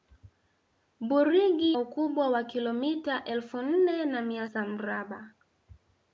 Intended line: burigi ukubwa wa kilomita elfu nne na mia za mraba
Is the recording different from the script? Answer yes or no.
no